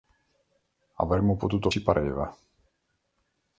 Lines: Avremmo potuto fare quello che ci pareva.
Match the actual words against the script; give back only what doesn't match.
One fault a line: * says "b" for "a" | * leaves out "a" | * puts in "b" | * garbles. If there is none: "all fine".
* leaves out "fare quello che"